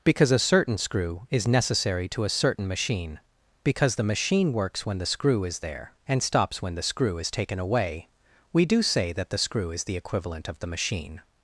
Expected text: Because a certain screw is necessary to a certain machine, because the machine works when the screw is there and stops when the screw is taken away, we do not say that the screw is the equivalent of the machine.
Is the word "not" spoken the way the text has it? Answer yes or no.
no